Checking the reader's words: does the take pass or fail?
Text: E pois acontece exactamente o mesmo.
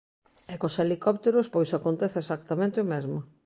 fail